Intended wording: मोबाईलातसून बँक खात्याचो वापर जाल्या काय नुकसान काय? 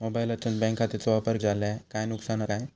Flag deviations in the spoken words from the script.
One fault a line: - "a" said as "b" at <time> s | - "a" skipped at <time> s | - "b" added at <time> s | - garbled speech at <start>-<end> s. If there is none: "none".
none